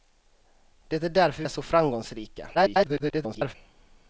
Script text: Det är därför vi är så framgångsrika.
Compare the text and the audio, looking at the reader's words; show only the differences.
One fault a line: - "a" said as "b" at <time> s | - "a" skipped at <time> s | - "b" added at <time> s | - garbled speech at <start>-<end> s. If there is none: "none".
- "vi" skipped at 1.4 s
- garbled speech at 2.5-3.6 s